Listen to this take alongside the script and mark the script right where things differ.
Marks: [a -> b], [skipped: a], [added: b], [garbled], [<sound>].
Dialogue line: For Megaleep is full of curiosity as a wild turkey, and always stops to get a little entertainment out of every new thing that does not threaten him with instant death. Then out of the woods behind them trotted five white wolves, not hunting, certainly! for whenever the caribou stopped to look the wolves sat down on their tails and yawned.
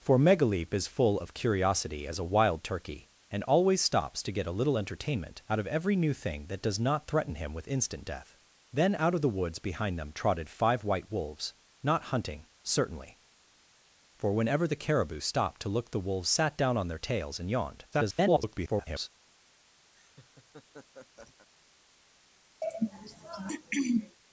For Megaleep is full of curiosity as a wild turkey, and always stops to get a little entertainment out of every new thing that does not threaten him with instant death. Then out of the woods behind them trotted five white wolves, not hunting, certainly! for whenever the caribou stopped to look the wolves sat down on their tails and yawned. [garbled] [laugh] [throat clearing]